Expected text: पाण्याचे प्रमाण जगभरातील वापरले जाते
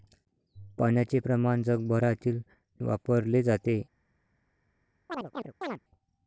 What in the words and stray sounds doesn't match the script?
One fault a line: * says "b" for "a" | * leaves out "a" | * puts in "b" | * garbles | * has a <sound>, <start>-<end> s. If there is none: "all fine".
* has a chirp, 5.1-5.8 s